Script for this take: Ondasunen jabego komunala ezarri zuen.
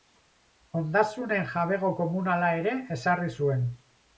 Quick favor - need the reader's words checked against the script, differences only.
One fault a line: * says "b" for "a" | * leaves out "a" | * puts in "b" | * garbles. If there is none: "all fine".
* puts in "ere"